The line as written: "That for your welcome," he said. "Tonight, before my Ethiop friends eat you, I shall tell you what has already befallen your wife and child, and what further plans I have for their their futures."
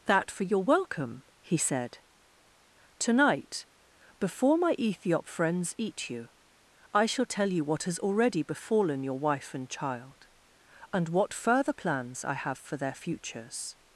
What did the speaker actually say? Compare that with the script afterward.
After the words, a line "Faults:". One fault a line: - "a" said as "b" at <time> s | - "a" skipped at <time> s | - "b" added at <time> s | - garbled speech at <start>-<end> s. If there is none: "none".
"That for your welcome," he said. "Tonight, before my Ethiop friends eat you, I shall tell you what has already befallen your wife and child, and what further plans I have for their futures."
Faults:
- "their" skipped at 12.9 s